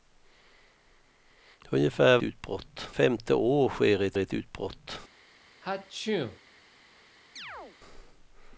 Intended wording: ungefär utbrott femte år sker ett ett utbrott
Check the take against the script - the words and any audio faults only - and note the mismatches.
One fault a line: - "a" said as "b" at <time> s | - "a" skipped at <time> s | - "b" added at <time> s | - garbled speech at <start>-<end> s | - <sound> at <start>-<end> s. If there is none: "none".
- sneeze at 5.6-6.4 s
- chirp at 7.4-7.8 s